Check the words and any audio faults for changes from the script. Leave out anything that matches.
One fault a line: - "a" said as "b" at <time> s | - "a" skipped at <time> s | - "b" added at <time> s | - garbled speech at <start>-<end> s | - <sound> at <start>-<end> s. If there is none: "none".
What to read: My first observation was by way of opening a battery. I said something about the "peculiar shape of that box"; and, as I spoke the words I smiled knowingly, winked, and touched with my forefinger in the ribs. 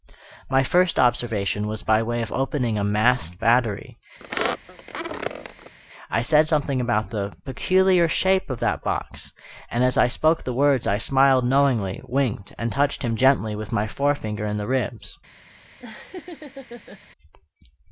- "masked" added at 2.8 s
- squeak at 4.2-5.7 s
- "him gently" added at 13.0 s
- laugh at 15.8-17.0 s